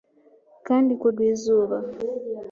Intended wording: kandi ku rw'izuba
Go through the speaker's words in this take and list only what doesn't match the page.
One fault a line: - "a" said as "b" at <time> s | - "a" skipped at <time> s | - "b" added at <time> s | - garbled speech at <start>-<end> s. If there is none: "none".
none